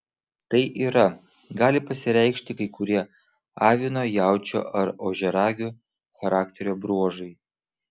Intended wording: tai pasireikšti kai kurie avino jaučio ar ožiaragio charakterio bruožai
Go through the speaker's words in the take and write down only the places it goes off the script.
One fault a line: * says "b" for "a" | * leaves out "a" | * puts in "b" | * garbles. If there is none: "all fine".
* puts in "yra gali"